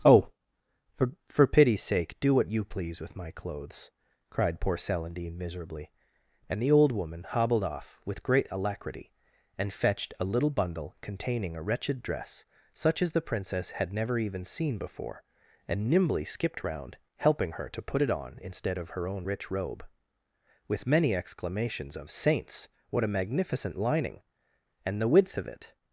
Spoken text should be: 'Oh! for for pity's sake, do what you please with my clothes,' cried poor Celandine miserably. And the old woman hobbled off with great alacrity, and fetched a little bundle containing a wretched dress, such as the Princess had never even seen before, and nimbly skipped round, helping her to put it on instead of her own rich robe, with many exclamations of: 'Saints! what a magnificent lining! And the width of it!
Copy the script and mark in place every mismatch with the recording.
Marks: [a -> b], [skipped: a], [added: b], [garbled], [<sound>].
'Oh! for for pity's sake, do what you please with my clothes,' cried poor Celandine miserably. And the old woman hobbled off with great alacrity, and fetched a little bundle containing a wretched dress, such as the Princess had never even seen before, and nimbly skipped round, helping her to put it on instead of her own rich robe, with many exclamations of: 'Saints! what a magnificent lining! And the width of it!